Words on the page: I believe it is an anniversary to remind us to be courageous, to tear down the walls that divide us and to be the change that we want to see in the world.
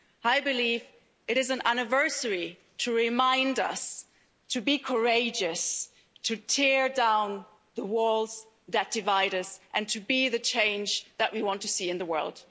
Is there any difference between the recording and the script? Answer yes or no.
no